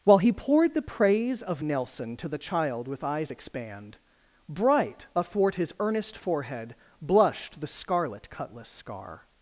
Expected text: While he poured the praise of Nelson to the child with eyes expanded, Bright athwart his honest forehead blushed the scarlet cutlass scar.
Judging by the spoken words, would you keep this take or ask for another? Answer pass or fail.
fail